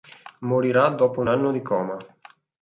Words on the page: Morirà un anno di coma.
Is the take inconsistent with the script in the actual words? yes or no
yes